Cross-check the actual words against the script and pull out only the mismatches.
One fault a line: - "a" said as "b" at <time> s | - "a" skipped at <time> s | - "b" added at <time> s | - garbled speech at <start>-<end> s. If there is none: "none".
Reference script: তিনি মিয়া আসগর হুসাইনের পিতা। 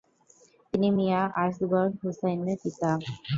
none